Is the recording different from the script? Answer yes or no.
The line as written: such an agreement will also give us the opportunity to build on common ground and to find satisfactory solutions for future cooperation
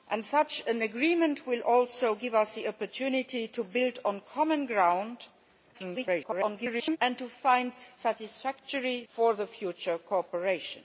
yes